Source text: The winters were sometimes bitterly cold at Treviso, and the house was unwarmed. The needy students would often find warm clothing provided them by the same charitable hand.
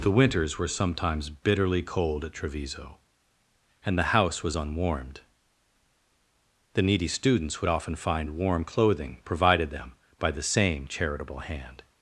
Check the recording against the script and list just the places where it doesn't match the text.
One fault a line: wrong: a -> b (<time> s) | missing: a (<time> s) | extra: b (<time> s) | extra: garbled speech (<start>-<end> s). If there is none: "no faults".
no faults